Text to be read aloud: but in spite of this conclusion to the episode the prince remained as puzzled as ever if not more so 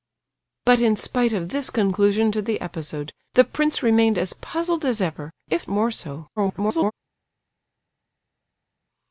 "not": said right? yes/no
no